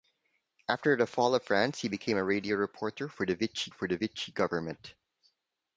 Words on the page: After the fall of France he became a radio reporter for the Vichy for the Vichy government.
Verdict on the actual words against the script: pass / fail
pass